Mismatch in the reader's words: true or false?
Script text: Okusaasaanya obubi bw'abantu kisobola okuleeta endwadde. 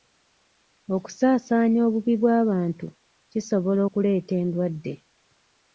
false